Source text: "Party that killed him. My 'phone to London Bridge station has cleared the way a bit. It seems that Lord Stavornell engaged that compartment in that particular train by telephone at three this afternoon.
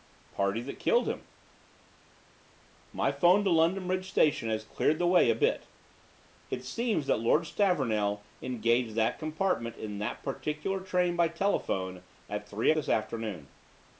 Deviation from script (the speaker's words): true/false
false